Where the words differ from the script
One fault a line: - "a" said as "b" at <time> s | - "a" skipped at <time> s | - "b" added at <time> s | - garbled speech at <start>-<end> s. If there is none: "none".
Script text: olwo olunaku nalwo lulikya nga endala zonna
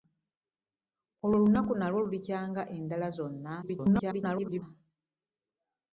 - garbled speech at 3.6-4.6 s